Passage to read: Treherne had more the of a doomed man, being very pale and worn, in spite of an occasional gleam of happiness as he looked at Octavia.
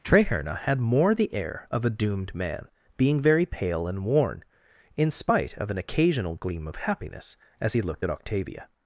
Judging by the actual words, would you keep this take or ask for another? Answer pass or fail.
fail